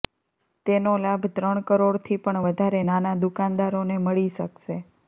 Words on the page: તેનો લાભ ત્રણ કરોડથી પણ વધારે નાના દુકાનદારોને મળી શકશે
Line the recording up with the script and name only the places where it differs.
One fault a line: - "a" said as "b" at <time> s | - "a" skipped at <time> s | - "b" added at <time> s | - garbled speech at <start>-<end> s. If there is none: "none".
none